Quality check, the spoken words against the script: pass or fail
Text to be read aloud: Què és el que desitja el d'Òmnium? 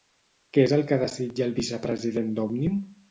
fail